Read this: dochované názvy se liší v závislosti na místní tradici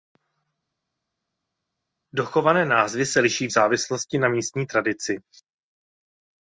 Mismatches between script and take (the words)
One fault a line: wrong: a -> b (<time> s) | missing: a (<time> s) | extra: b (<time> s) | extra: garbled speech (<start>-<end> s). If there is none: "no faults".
no faults